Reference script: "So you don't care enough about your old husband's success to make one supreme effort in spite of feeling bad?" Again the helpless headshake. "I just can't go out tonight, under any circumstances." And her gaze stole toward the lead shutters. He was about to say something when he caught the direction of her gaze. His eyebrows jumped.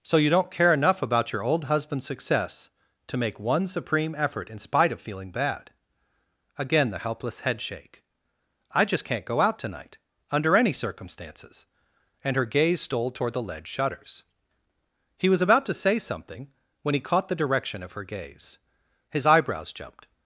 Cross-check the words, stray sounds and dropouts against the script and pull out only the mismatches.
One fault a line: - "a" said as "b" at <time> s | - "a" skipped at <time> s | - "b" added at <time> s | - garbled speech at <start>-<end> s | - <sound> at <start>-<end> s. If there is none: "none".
none